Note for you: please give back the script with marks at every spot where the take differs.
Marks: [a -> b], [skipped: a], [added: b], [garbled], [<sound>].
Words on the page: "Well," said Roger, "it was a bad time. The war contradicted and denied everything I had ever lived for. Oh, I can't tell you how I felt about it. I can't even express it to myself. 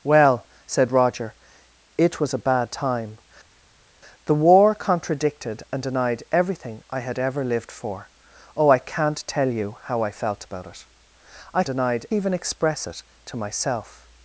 "Well," said Roger, "it was a bad time. The war contradicted and denied everything I had ever lived for. Oh, I can't tell you how I felt about it. I [can't -> denied] even express it to myself.